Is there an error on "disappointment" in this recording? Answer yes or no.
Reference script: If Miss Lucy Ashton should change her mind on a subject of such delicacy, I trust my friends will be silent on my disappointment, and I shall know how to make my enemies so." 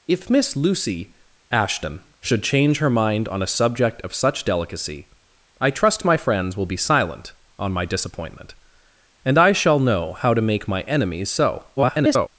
no